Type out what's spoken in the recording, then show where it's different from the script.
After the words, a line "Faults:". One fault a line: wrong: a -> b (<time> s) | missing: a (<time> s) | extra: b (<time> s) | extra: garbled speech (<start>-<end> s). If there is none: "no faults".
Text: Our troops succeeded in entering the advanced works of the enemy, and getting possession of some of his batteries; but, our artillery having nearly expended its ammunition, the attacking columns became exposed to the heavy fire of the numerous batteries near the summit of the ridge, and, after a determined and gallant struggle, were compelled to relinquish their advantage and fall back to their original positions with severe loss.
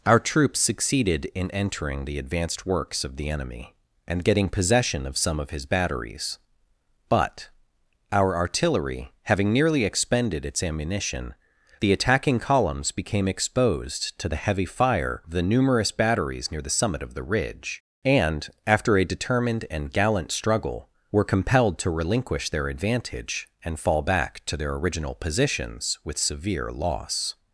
Our troops succeeded in entering the advanced works of the enemy, and getting possession of some of his batteries; but, our artillery having nearly expended its ammunition, the attacking columns became exposed to the heavy fire of the numerous batteries near the summit of the ridge, and, after a determined and gallant struggle, were compelled to relinquish their advantage and fall back to their original positions with severe loss.
Faults:
no faults